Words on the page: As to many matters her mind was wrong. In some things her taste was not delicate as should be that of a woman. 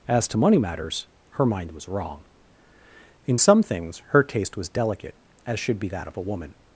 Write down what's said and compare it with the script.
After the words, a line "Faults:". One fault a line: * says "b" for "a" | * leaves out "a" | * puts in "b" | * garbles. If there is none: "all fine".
As to money matters her mind was wrong. In some things her taste was delicate as should be that of a woman.
Faults:
* says "money" for "many"
* leaves out "not"